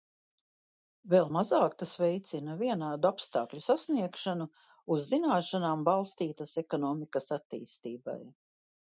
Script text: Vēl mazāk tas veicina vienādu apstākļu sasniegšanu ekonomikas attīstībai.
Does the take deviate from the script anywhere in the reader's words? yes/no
yes